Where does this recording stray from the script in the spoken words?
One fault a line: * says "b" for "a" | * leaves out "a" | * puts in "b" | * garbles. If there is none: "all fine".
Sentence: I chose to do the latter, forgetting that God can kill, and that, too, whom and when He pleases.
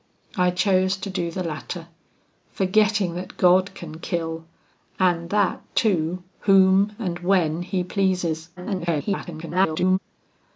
* garbles